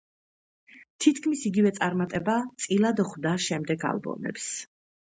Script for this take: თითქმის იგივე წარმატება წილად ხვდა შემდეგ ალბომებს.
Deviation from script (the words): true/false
false